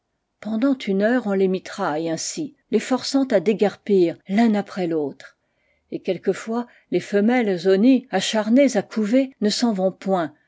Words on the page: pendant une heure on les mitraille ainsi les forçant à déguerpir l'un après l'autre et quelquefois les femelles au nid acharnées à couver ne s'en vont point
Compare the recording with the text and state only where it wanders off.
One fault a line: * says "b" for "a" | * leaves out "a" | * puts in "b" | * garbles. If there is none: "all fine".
all fine